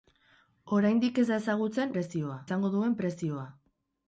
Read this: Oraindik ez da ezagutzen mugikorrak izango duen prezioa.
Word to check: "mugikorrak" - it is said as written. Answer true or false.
false